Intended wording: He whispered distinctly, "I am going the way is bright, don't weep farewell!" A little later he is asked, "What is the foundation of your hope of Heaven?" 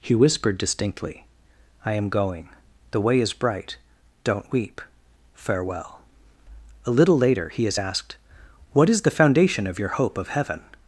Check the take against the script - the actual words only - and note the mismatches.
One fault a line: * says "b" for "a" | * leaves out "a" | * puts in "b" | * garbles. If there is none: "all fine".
all fine